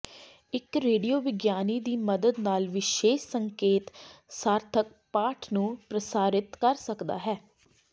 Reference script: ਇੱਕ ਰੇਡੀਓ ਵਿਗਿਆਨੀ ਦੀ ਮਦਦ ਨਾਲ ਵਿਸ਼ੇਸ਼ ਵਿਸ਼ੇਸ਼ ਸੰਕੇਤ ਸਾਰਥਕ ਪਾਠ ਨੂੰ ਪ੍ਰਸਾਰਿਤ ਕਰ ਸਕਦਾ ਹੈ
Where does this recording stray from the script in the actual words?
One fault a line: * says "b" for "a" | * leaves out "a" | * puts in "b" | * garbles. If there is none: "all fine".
* leaves out "ਵਿਸ਼ੇਸ਼"